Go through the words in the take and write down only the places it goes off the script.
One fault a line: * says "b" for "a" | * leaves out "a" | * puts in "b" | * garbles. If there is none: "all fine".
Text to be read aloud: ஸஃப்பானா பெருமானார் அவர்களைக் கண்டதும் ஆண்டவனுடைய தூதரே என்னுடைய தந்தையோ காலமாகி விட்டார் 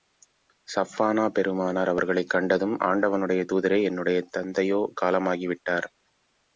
all fine